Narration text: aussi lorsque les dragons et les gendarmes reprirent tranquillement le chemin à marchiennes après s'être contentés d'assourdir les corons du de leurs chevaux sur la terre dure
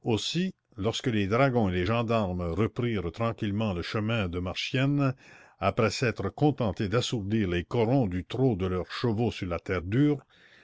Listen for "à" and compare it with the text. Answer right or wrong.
wrong